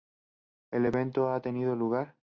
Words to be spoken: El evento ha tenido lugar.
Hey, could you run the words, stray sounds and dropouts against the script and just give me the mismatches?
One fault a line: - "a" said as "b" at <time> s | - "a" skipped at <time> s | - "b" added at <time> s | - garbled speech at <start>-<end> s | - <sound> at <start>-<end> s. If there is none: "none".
none